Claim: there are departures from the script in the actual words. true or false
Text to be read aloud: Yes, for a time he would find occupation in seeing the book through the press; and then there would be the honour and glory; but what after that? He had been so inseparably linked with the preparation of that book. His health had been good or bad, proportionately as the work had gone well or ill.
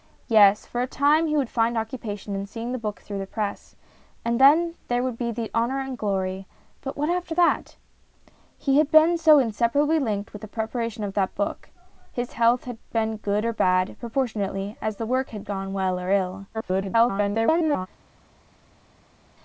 true